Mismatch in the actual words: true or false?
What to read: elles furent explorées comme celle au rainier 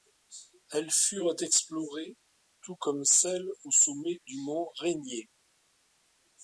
true